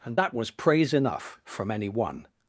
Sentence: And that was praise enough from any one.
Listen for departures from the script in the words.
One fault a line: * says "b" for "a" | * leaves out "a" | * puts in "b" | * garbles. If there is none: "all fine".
all fine